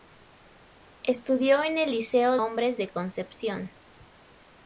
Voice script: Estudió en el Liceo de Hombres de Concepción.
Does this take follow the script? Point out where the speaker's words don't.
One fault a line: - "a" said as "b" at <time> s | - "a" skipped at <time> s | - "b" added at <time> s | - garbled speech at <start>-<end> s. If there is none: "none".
- "de" skipped at 2.4 s